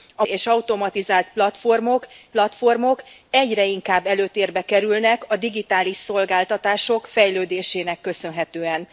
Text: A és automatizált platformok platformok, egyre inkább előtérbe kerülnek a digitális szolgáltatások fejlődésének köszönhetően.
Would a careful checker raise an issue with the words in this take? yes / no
no